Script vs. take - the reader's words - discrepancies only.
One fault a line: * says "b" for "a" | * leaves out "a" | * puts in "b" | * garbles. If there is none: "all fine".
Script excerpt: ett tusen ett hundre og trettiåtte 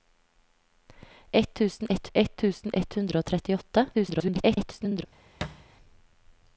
* puts in "ett tusen ett"
* garbles